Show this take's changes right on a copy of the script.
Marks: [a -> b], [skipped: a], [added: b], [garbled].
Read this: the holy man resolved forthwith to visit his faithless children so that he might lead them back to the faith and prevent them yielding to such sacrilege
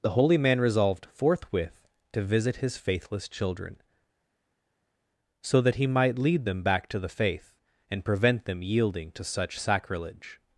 the holy man resolved forthwith to visit his faithless children so that he might lead them back to the faith and prevent them yielding to such sacrilege